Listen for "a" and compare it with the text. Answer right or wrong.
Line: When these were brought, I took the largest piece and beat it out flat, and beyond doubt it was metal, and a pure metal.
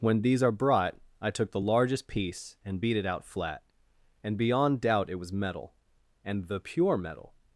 wrong